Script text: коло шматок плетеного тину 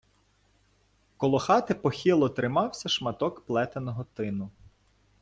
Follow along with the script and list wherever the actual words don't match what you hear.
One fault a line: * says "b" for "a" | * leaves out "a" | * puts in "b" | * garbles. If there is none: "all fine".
* puts in "хати похило тримався"